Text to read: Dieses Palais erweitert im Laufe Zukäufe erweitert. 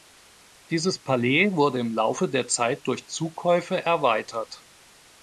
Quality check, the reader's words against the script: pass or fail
fail